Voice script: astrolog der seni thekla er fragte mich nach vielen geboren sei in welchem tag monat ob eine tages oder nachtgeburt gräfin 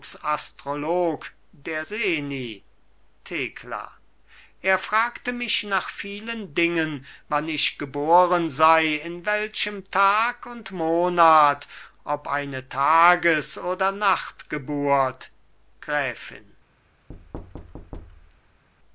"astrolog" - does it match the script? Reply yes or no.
yes